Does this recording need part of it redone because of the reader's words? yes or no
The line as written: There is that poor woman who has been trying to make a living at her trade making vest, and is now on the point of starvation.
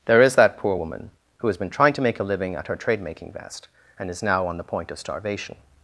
no